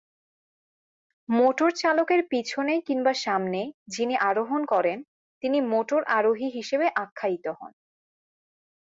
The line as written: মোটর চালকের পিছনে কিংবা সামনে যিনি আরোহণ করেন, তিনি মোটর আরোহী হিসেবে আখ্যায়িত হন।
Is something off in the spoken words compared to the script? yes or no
no